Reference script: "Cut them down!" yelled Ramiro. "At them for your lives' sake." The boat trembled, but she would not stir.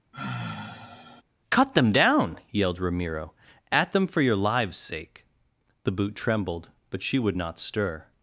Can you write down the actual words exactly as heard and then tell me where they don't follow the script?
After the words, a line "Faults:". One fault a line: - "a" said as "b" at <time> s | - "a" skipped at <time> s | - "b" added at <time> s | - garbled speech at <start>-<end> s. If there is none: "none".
"Cut them down!" yelled Ramiro. "At them for your lives' sake." The boot trembled, but she would not stir.
Faults:
- "boat" said as "boot" at 5.9 s